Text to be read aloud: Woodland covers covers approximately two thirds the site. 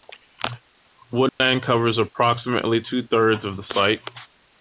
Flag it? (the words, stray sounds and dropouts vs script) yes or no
yes